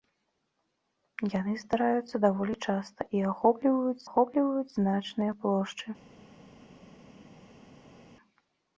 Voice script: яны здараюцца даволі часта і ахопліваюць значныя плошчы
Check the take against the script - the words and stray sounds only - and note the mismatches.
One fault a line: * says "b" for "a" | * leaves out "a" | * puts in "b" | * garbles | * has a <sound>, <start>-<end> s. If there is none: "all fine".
* puts in "ахопліваюць"